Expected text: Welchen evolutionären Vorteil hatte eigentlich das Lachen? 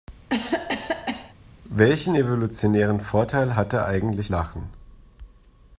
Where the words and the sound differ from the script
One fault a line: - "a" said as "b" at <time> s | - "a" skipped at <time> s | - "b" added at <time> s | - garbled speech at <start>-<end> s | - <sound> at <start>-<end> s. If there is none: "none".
- cough at 0.3-1.3 s
- "das" skipped at 4.3 s